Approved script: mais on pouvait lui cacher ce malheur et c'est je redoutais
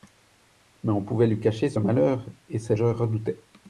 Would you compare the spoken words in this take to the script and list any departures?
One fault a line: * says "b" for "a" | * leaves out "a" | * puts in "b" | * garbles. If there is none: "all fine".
all fine